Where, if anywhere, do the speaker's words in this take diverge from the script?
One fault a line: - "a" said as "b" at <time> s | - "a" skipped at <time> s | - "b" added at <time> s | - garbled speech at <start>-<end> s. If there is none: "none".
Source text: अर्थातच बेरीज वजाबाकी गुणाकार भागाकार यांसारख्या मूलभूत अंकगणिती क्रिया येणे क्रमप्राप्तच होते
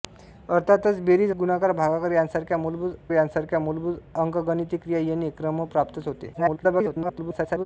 - "वजाबाकी" skipped at 1.3 s
- "यांसारख्या मूलभूत" added at 3.1 s
- garbled speech at 6.3-7.7 s